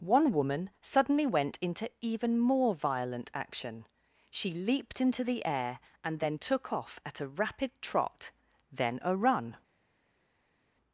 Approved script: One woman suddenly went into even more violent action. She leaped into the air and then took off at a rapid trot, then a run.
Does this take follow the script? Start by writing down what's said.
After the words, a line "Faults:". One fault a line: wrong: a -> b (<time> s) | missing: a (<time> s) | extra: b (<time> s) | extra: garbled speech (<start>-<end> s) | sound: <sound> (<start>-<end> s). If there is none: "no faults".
One woman suddenly went into even more violent action. She leaped into the air and then took off at a rapid trot, then a run.
Faults:
no faults